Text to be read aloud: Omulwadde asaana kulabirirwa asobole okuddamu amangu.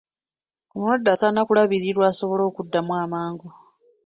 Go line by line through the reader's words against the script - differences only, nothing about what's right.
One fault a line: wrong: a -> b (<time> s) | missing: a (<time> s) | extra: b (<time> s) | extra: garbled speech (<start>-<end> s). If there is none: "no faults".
no faults